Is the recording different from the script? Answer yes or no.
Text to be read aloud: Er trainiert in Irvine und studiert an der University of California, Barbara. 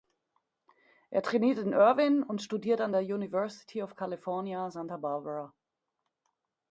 yes